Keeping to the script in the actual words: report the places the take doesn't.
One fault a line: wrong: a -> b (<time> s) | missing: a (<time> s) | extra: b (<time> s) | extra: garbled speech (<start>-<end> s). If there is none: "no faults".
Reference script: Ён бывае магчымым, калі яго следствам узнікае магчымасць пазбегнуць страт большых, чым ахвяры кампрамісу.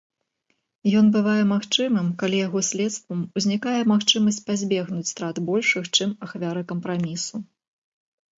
no faults